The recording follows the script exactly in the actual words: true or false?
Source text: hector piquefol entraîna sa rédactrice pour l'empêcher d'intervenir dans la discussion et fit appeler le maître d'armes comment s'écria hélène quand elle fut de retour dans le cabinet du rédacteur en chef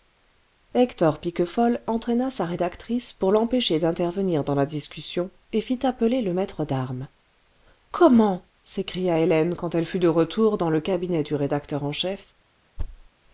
true